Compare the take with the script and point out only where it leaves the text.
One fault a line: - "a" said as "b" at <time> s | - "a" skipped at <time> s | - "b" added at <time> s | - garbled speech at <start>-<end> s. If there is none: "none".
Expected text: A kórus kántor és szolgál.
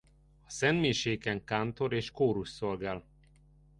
- "kórus" said as "szentmiséken" at 0.5 s
- "kórus" added at 2.1 s